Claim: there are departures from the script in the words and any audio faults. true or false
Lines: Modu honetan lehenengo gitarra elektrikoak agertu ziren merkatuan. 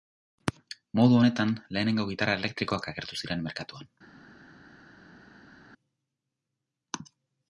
false